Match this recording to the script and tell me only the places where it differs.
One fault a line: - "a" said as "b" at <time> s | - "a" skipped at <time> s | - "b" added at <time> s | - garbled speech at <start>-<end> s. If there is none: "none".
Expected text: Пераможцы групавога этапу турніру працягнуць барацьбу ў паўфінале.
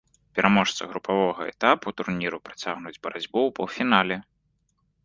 none